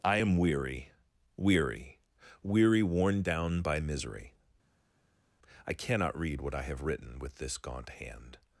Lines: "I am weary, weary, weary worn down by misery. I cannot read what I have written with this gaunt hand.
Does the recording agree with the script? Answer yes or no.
yes